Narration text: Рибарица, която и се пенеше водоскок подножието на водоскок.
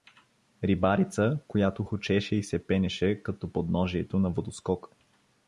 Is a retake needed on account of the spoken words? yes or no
yes